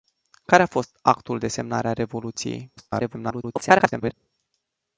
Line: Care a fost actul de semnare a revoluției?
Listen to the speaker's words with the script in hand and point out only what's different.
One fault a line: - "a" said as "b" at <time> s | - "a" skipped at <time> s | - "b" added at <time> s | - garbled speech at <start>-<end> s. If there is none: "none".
- garbled speech at 2.8-4.1 s